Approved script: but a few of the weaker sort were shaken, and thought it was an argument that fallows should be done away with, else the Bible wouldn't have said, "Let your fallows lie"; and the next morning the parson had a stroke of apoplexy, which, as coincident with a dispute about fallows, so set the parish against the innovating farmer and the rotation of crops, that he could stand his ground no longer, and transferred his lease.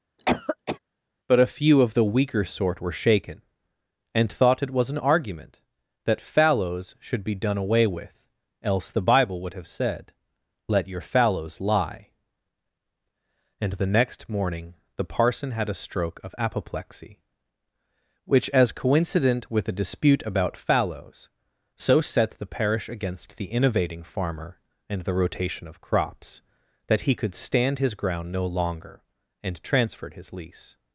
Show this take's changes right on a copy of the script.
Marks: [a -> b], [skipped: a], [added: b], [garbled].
but a few of the weaker sort were shaken, and thought it was an argument that fallows should be done away with, else the Bible [wouldn't -> would] have said, "Let your fallows lie"; and the next morning the parson had a stroke of apoplexy, which, as coincident with a dispute about fallows, so set the parish against the innovating farmer and the rotation of crops, that he could stand his ground no longer, and transferred his lease.